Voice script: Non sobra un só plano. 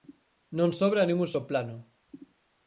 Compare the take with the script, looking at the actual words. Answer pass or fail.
fail